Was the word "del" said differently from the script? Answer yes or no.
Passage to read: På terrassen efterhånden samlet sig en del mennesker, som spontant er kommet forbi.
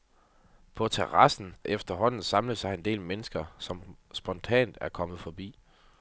no